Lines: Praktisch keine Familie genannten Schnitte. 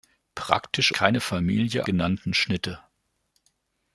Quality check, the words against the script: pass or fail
pass